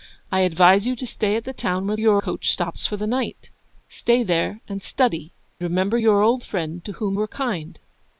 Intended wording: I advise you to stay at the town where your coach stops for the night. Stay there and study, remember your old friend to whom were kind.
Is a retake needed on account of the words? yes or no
no